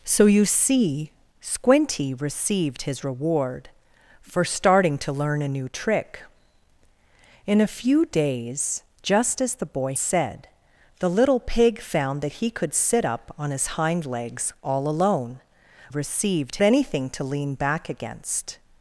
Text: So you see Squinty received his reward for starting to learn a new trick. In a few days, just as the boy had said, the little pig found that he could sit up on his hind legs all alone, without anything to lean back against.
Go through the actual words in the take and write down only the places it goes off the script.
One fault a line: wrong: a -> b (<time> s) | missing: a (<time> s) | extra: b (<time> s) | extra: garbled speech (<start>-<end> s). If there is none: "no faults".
missing: had (9.9 s)
wrong: without -> received (15.9 s)